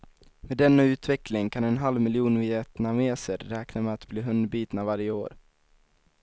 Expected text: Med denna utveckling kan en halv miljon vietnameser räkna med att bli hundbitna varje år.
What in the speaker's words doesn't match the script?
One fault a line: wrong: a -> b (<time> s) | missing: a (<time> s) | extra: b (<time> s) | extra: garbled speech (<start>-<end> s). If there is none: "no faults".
no faults